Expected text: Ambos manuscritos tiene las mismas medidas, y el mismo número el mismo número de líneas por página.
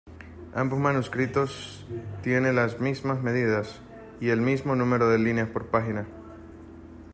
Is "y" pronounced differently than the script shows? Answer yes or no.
no